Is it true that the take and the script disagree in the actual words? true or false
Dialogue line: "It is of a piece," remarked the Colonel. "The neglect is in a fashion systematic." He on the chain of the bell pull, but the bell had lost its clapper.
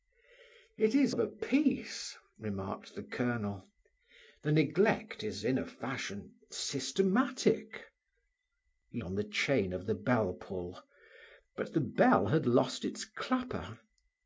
false